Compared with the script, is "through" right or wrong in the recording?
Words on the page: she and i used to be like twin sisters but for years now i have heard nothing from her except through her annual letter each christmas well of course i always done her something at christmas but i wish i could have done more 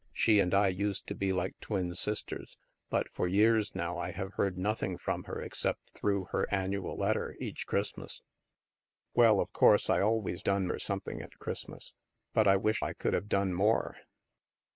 right